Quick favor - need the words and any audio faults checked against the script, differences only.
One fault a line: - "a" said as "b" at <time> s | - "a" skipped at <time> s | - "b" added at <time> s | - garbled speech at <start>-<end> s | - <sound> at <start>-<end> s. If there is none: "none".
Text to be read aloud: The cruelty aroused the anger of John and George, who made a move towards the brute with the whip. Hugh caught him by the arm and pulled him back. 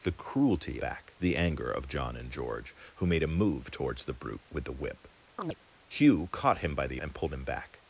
- "aroused" said as "back" at 0.8 s
- chirp at 5.4-5.6 s
- "arm" skipped at 7.0 s